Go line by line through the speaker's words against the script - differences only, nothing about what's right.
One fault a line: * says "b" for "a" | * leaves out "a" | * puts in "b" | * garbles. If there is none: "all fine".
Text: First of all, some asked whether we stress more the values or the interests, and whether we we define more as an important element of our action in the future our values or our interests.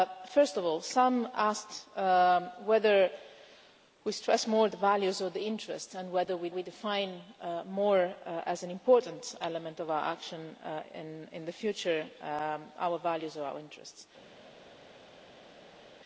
all fine